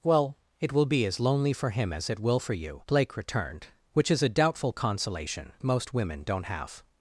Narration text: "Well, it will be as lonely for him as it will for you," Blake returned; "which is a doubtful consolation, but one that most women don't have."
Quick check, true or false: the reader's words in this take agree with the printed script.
false